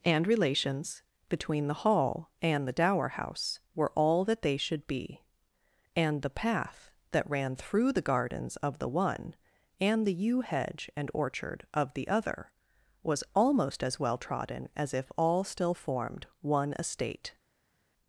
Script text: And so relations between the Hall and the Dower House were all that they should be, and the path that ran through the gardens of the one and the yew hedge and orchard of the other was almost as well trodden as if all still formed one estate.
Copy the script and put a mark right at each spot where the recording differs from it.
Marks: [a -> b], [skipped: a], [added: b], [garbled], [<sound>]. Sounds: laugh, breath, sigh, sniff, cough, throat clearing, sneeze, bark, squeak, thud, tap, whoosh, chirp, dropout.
And [skipped: so] relations between the Hall and the Dower House were all that they should be, and the path that ran through the gardens of the one and the yew hedge and orchard of the other was almost as well trodden as if all still formed one estate.